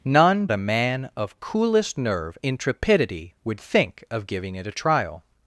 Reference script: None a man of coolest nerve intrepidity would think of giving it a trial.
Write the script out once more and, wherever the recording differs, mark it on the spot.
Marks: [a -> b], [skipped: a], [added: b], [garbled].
None a man of coolest nerve intrepidity would think of giving it a trial.